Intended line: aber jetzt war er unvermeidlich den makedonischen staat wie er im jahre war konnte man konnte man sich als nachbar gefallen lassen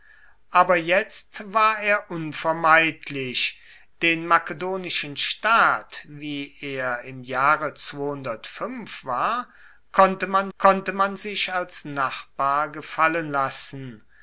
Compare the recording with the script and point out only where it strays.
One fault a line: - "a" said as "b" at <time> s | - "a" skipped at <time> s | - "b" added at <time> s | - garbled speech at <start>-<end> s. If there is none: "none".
none